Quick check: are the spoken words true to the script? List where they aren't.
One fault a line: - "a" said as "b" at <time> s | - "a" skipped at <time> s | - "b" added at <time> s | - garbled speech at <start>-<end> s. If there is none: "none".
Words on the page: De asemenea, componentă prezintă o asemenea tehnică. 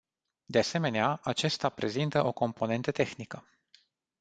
- "componentă" said as "acesta" at 1.2 s
- "asemenea" said as "componentă" at 2.3 s